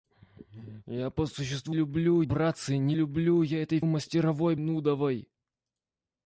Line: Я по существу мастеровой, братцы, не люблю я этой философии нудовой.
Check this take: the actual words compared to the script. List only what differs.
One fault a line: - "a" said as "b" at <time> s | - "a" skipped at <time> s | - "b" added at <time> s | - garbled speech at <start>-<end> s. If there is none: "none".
- "мастеровой" said as "люблю" at 1.7 s
- "философии" said as "мастеровой" at 3.8 s